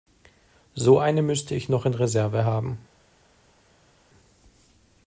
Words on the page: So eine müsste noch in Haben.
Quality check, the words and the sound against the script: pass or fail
fail